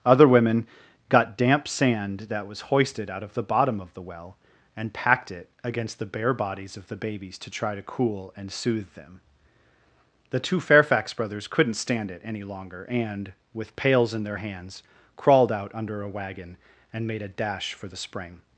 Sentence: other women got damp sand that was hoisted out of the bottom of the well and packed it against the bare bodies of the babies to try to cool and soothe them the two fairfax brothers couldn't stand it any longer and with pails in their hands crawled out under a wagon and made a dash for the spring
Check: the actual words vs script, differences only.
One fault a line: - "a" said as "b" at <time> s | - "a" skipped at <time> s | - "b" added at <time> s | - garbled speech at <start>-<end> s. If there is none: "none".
none